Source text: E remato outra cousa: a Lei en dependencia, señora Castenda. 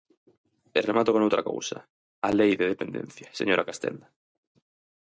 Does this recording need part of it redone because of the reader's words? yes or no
yes